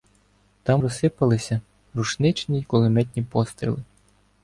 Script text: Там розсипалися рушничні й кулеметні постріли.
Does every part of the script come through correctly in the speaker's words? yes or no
yes